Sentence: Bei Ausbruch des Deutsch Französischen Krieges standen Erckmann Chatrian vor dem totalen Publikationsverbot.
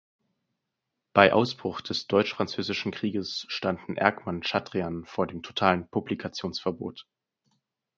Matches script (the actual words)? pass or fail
pass